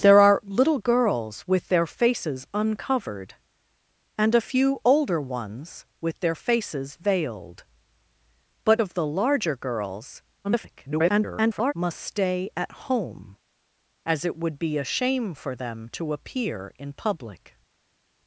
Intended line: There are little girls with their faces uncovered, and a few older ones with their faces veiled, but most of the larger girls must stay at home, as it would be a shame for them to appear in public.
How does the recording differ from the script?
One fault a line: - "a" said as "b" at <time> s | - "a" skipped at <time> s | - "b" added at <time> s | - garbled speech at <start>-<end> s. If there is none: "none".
- "most" skipped at 8.8 s
- garbled speech at 10.4-11.7 s